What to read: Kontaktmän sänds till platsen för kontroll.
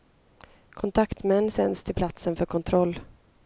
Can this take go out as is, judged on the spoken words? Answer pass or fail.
pass